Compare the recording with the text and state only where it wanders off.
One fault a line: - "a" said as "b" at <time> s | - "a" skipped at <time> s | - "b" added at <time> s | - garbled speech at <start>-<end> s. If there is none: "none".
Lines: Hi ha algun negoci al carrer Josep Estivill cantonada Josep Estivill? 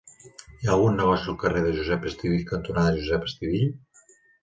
none